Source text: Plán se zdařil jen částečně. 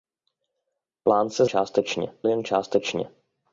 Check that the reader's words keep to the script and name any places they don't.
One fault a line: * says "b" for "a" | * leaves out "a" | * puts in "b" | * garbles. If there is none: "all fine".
* says "částečně" for "zdařil"